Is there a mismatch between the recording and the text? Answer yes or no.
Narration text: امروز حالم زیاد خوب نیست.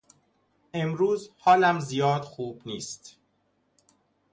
no